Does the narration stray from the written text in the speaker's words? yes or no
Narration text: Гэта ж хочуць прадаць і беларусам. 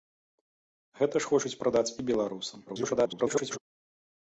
yes